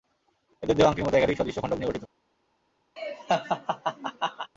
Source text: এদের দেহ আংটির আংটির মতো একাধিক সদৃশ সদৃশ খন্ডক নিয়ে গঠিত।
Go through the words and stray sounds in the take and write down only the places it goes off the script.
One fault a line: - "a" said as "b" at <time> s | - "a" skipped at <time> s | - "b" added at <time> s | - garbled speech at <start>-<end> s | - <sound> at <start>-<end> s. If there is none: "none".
- "আংটির" skipped at 1.1 s
- "সদৃশ" skipped at 1.6 s
- laugh at 3.0-4.5 s